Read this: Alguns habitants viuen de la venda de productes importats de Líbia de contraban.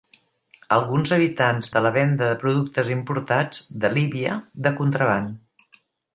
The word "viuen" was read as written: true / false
false